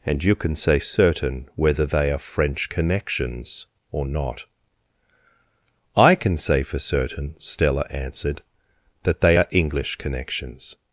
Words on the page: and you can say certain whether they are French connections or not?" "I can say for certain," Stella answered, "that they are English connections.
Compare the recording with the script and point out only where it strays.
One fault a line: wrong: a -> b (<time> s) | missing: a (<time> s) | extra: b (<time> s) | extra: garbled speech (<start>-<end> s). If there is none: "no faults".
no faults